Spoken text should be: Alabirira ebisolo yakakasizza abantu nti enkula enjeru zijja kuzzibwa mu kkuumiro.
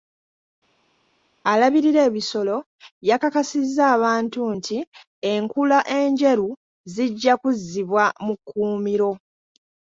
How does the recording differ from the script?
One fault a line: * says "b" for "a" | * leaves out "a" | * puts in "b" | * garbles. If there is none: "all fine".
all fine